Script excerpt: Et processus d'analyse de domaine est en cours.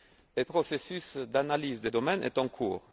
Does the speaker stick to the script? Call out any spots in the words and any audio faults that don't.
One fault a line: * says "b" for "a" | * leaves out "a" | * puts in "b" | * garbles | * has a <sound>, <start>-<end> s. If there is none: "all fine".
all fine